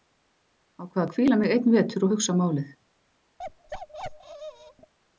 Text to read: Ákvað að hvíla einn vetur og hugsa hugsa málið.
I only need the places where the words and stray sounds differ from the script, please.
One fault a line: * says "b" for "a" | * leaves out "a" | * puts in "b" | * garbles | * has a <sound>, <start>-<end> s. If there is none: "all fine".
* puts in "mig"
* leaves out "hugsa"
* has a bark, 3.4-4.9 s